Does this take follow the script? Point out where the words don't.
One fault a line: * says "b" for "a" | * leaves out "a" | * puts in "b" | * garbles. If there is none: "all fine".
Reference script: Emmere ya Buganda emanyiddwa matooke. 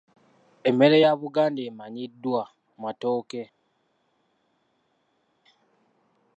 all fine